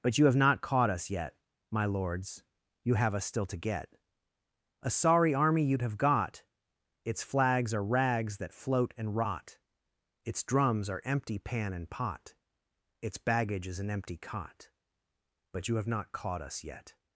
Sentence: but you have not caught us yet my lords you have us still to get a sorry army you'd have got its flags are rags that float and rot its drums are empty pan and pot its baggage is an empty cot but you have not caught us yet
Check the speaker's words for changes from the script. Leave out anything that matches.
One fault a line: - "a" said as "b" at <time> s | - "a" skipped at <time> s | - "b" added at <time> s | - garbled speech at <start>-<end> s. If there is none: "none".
none